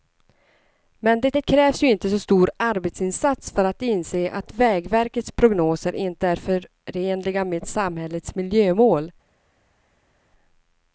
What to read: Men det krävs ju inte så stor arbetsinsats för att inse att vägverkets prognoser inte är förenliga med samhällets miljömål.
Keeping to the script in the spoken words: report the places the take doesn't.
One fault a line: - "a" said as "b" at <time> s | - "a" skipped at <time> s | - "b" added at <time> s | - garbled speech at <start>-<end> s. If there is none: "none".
- "det" added at 1.3 s